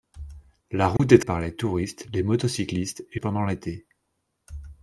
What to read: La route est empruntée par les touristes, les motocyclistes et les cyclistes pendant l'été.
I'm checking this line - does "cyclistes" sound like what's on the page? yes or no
no